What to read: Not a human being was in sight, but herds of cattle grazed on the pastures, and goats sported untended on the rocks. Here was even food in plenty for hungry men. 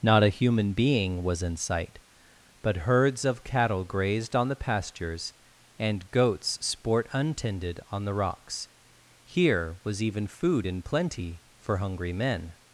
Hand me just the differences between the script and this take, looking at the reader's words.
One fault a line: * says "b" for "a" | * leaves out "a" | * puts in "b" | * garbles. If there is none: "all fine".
* says "sport" for "sported"